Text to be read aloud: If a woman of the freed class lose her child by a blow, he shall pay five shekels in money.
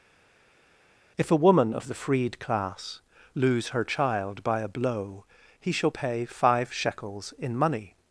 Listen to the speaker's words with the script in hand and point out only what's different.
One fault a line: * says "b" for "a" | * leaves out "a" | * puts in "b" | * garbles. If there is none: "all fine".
all fine